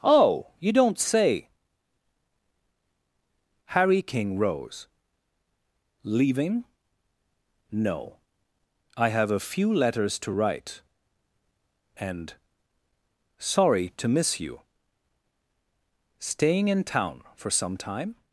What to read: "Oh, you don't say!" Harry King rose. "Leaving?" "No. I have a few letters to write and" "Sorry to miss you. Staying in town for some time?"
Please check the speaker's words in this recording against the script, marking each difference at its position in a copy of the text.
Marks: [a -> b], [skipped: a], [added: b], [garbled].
"Oh, you don't say!" Harry King rose. "Leaving?" "No. I have a few letters to write and" "Sorry to miss you. Staying in town for some time?"